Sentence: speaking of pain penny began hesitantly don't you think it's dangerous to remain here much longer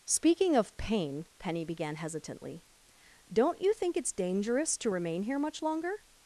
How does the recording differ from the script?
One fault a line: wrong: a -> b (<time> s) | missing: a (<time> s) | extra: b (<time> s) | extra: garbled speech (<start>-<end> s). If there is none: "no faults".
no faults